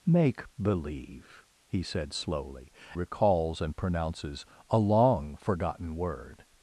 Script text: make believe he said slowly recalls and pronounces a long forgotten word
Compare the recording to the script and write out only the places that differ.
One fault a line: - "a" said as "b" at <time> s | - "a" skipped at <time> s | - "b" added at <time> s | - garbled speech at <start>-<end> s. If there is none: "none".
none